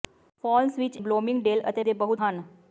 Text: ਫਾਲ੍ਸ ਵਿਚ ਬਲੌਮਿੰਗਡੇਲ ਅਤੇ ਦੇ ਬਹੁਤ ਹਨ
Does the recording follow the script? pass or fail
pass